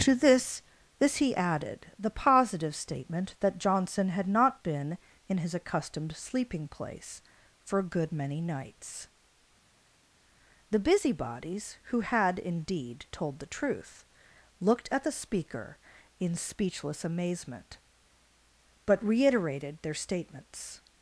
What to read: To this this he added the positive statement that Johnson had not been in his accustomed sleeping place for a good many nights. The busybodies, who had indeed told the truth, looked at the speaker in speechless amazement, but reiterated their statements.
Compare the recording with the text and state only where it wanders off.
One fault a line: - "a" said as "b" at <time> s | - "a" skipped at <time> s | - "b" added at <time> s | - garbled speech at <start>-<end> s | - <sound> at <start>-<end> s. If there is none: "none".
none